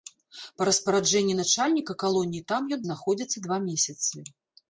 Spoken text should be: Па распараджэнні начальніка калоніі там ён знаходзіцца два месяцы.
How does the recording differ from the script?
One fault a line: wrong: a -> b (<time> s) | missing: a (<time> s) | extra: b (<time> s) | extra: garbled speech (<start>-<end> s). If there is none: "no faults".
no faults